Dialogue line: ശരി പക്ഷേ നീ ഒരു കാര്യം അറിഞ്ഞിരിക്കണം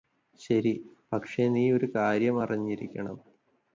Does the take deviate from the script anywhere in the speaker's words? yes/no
no